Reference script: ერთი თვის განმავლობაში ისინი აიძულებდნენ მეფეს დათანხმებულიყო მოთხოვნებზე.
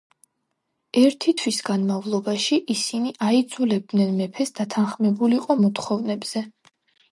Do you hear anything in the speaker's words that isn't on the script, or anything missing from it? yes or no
no